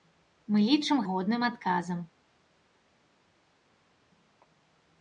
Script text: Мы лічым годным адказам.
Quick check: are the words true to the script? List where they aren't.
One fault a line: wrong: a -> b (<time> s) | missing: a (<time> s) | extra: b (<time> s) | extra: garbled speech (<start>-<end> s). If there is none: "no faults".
no faults